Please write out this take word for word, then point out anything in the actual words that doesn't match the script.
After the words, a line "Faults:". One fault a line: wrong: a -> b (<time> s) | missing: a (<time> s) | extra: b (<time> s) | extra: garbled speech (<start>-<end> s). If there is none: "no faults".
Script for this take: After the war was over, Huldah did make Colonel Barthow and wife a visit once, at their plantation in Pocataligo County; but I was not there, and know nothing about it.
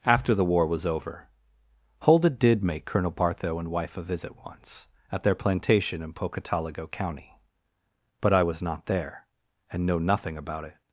After the war was over, Huldah did make Colonel Barthow and wife a visit once, at their plantation in Pocataligo County; but I was not there, and know nothing about it.
Faults:
no faults